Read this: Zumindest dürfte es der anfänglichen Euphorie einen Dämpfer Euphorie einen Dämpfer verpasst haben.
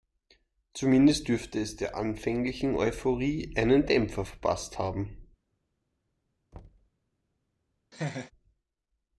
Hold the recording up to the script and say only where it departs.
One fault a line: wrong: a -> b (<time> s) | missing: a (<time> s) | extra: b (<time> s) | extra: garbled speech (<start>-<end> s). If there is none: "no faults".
missing: Euphorie einen Dämpfer (4.2 s)